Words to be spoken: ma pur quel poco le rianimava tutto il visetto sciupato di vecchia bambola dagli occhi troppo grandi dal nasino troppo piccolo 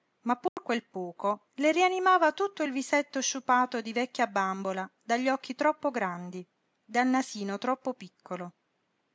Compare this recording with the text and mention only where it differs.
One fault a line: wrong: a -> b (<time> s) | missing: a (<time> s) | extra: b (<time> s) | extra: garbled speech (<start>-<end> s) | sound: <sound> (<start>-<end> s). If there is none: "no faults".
sound: dropout (0.5-0.6 s)